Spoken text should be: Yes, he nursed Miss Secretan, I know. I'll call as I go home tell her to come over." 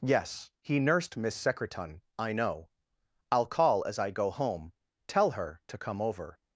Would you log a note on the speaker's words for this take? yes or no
no